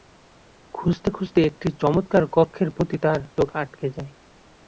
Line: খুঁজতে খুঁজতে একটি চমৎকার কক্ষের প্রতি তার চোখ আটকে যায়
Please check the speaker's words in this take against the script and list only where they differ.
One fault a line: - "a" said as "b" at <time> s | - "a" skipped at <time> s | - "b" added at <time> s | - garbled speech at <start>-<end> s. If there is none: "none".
none